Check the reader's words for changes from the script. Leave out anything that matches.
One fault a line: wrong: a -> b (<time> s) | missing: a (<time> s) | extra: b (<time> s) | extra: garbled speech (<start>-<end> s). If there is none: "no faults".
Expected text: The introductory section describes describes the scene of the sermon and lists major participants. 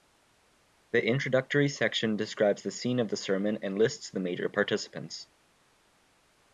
missing: describes (2.6 s)
extra: the (4.1 s)